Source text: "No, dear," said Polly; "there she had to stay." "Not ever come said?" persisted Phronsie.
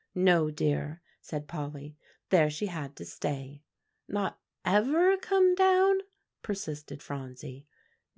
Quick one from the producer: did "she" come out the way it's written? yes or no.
yes